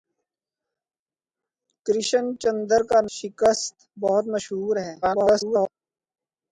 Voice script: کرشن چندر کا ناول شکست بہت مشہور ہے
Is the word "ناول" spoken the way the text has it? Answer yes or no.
no